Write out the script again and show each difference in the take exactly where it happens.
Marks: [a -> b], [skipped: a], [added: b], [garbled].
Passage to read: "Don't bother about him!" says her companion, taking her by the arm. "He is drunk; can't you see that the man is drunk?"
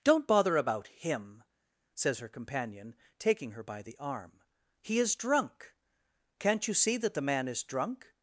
"Don't bother about him!" says her companion, taking her by the arm. "He is drunk; can't you see that the man is drunk?"